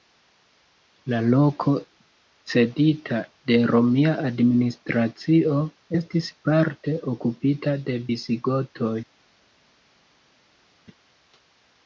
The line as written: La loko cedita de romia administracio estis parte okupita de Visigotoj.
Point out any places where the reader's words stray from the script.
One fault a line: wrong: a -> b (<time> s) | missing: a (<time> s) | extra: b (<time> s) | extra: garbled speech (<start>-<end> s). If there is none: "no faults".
no faults